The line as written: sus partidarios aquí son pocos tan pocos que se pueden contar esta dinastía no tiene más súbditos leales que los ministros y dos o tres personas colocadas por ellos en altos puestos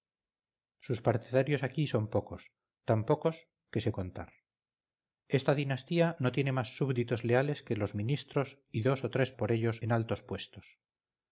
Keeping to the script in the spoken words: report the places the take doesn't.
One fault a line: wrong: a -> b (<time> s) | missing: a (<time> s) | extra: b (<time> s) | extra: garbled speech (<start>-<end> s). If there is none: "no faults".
missing: pueden (3.9 s)
missing: personas colocadas (9.3 s)